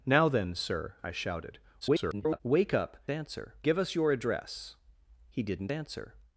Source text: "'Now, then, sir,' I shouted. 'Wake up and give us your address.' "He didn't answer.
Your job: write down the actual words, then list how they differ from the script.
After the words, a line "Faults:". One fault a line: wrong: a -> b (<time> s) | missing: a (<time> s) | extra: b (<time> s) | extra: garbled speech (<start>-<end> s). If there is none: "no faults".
"'Now, then, sir,' I shouted. [garbled] 'Wake up answer give us your address.' "He didn't answer.
Faults:
extra: garbled speech (1.8-2.4 s)
wrong: and -> answer (3.1 s)